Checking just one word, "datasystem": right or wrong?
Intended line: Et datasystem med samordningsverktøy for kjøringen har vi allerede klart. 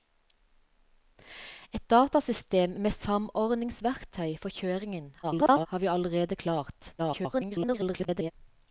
right